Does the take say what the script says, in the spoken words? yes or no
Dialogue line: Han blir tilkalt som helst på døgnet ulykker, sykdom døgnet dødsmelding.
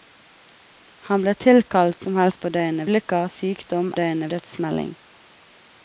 yes